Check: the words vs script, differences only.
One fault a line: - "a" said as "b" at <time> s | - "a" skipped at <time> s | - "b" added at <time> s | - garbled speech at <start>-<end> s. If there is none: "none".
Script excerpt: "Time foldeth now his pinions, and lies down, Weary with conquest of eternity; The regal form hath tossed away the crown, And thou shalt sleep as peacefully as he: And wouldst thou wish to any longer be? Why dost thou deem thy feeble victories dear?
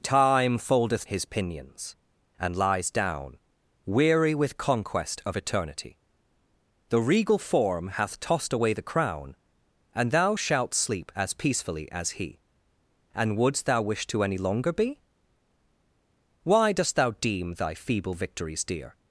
- "now" skipped at 1.1 s